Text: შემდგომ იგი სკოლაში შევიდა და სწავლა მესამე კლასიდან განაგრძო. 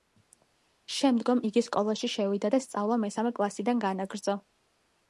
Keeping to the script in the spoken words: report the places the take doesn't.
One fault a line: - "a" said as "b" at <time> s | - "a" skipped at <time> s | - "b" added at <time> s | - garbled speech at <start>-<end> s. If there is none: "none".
none